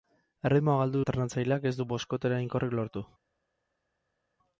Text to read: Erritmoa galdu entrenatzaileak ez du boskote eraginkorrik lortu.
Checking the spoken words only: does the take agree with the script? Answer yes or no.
yes